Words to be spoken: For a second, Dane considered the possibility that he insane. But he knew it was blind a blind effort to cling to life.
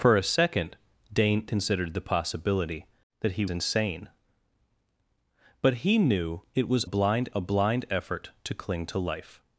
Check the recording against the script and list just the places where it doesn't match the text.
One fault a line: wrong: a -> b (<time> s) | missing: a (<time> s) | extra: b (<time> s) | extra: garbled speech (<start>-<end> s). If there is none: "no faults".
no faults